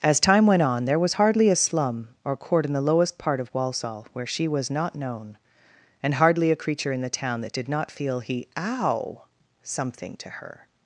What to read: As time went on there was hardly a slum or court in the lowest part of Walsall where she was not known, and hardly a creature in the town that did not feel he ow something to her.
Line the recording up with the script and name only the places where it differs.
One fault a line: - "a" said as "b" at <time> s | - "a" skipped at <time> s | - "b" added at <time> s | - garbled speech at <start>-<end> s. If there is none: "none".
none